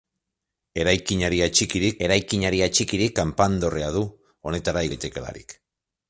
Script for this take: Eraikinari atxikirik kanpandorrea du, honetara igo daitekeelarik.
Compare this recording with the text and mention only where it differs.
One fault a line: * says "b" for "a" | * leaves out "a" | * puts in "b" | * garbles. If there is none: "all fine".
* puts in "eraikinari atxikirik"
* leaves out "igo"